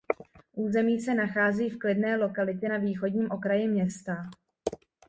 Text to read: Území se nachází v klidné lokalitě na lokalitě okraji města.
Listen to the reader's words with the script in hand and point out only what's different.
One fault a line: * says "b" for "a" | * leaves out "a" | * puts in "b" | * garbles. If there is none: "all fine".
* says "východním" for "lokalitě"